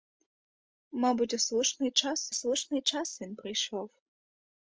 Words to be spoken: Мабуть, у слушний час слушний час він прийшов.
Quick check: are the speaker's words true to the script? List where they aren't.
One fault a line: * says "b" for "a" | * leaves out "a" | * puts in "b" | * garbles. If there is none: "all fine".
all fine